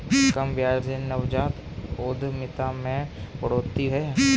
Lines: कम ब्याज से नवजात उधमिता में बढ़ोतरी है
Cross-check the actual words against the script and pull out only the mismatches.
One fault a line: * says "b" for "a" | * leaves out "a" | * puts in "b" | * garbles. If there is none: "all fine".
all fine